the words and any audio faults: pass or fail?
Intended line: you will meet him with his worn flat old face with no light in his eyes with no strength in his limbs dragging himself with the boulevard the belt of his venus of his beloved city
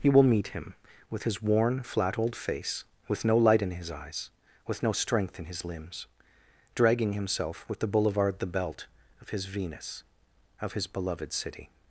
pass